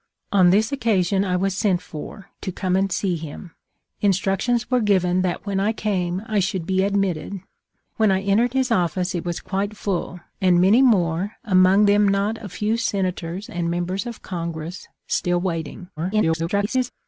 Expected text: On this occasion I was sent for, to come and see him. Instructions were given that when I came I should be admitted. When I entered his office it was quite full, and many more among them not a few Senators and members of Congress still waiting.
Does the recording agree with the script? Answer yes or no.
no